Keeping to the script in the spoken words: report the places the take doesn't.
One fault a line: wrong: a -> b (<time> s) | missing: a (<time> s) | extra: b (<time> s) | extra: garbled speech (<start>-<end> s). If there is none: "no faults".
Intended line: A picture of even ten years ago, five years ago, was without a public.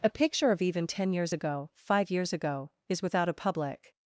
wrong: was -> is (2.9 s)